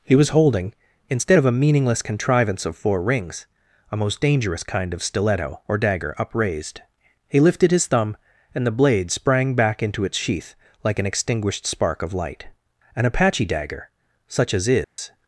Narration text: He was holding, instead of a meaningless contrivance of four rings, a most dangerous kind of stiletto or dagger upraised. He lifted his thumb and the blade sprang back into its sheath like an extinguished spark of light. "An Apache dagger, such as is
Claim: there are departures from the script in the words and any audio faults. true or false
true